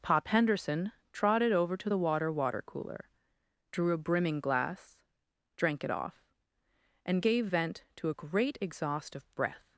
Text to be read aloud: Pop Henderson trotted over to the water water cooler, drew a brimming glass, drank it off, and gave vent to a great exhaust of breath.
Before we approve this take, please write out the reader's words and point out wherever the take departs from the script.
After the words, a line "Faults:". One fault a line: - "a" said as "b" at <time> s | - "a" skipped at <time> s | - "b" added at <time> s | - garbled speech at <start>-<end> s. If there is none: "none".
Pop Henderson trotted over to the water water cooler, drew a brimming glass, drank it off, and gave vent to a great exhaust of breath.
Faults:
none